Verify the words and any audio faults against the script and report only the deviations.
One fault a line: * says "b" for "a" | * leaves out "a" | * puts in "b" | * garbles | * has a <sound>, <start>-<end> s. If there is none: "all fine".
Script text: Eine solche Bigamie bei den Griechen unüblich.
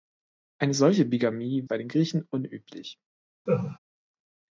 * has a laugh, 3.5-3.8 s